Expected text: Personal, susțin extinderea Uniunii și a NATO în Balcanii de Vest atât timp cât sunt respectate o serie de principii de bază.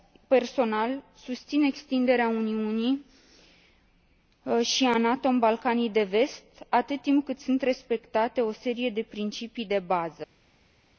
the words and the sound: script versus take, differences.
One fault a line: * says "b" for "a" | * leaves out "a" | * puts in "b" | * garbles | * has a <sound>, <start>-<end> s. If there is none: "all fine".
all fine